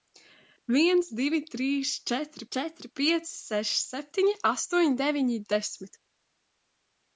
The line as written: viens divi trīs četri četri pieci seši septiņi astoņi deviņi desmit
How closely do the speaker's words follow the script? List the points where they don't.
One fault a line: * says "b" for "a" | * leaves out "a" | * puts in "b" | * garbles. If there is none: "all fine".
all fine